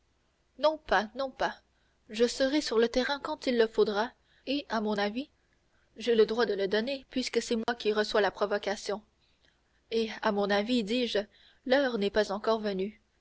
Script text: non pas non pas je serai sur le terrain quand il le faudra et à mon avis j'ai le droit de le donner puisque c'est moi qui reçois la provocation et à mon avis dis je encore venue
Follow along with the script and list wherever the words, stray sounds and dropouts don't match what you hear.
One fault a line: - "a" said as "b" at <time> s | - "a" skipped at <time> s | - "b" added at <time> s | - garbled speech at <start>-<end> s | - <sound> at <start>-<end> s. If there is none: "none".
- dropout at 7.6-7.7 s
- "l'heure n'est pas" added at 11.7 s